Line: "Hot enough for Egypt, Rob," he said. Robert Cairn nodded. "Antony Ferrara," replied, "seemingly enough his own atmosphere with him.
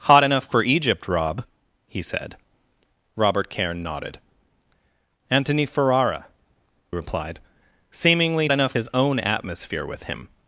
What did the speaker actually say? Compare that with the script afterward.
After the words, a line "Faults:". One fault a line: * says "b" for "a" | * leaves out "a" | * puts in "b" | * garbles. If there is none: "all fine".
"Hot enough for Egypt, Rob," he said. Robert Cairn nodded. "Antony Ferrara," replied, "seemingly enough his own atmosphere with him.
Faults:
all fine